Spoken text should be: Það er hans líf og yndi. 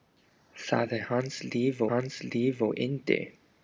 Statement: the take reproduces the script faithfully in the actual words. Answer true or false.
false